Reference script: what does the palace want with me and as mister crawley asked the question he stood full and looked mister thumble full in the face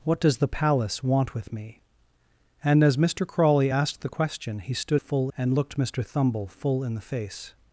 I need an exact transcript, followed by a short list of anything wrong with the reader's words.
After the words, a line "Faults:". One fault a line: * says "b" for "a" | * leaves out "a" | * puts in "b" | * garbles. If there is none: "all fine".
what does the palace want with me and as mister crawley asked the question he stood full and looked mister thumble full in the face
Faults:
all fine